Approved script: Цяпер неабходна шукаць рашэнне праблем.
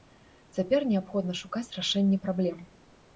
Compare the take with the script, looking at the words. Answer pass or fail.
pass